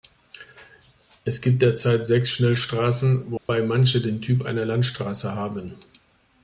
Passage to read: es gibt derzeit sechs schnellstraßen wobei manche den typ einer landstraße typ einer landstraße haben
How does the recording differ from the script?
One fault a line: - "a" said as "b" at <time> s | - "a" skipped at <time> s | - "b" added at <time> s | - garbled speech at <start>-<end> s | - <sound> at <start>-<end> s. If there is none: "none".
- dropout at 3.4-3.5 s
- "typ einer landstraße" skipped at 5.3 s